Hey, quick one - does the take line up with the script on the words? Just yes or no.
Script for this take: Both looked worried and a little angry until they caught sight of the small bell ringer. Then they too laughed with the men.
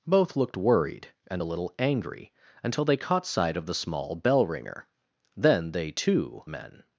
no